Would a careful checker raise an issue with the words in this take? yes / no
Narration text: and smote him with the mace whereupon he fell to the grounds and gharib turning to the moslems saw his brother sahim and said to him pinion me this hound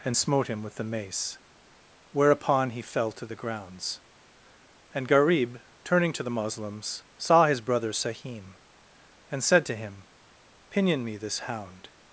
no